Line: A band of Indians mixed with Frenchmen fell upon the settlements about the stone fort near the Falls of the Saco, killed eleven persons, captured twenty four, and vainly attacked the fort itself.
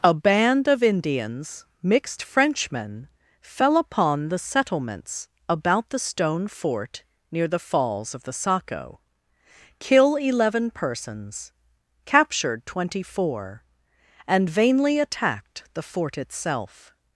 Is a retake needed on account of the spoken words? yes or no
yes